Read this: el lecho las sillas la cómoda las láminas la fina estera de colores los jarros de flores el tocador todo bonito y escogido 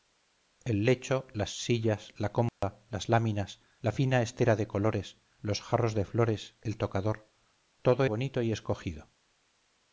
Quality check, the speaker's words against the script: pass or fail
pass